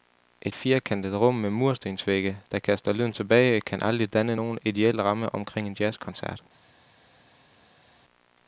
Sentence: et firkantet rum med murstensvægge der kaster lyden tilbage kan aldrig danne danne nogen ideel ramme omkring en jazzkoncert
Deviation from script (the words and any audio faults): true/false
true